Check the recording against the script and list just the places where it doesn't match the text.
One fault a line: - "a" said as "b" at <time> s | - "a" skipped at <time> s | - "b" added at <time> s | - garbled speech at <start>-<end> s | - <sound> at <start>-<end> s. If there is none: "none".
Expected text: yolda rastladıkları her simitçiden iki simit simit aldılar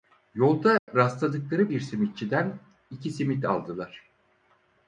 - dropout at 0.8-0.9 s
- "her" said as "bir" at 1.7 s
- "simit" skipped at 3.4 s